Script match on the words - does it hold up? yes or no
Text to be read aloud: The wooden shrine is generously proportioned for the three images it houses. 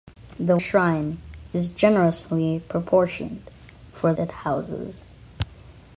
no